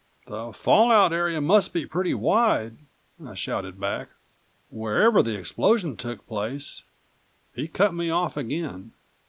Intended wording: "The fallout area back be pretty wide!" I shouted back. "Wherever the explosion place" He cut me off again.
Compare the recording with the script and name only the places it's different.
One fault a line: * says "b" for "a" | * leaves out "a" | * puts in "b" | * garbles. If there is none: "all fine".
* says "must" for "back"
* puts in "took"